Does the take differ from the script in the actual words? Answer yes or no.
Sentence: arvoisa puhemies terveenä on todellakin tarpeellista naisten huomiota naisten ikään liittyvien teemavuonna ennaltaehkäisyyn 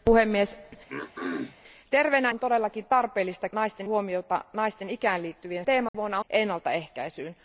no